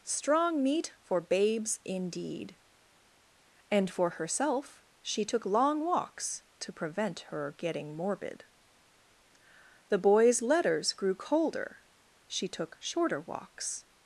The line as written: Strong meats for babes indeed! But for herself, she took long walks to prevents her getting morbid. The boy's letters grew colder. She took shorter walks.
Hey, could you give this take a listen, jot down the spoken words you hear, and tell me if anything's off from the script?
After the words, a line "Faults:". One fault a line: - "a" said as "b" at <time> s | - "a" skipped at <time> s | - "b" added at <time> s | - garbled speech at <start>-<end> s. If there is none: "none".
Strong meat for babes indeed! And for herself, she took long walks to prevent her getting morbid. The boy's letters grew colder. She took shorter walks.
Faults:
- "meats" said as "meat" at 0.6 s
- "But" said as "And" at 3.7 s
- "prevents" said as "prevent" at 6.7 s